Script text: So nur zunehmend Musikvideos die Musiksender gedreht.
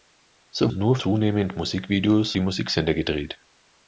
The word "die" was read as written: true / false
true